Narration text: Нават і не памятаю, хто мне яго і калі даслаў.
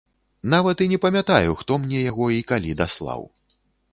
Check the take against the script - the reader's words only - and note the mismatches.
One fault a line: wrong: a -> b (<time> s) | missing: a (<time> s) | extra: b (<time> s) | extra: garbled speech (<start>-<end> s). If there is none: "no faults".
no faults